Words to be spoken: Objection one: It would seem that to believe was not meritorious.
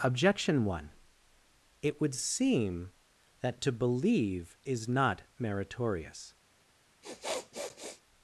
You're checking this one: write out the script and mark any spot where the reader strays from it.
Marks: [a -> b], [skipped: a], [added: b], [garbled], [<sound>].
Objection one: It would seem that to believe [was -> is] not meritorious. [sniff]